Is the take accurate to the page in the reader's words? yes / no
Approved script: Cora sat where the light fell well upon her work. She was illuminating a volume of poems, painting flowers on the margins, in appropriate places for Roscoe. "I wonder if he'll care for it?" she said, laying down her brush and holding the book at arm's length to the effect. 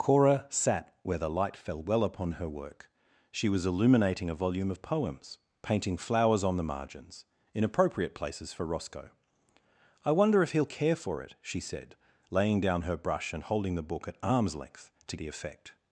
yes